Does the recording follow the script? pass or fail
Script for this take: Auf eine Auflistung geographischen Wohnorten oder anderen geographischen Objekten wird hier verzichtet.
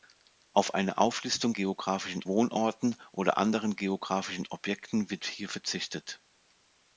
pass